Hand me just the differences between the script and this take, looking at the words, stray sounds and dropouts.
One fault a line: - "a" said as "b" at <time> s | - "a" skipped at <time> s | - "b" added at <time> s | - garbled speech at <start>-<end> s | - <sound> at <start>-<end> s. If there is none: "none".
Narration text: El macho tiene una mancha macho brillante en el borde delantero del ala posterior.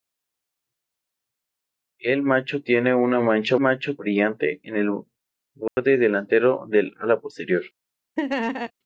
- dropout at 5.7-5.8 s
- laugh at 8.2-8.7 s